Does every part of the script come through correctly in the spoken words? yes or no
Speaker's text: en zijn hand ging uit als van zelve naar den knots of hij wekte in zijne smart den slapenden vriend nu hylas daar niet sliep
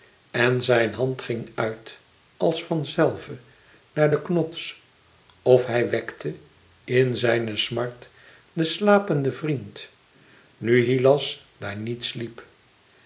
yes